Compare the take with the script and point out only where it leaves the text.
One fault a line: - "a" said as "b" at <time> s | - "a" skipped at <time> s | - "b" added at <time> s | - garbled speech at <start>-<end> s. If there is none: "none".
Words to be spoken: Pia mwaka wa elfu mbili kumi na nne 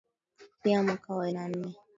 - "elfu mbili kumi" skipped at 1.3 s